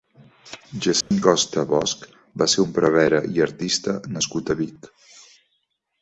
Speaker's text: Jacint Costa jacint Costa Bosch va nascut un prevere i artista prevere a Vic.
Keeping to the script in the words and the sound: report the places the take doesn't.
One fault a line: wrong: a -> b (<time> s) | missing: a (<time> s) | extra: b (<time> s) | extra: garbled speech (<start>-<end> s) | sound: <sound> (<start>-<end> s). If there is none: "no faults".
sound: dropout (1.0-1.1 s)
missing: jacint Costa (1.6 s)
wrong: nascut -> ser (2.5 s)
wrong: prevere -> nascut (4.1 s)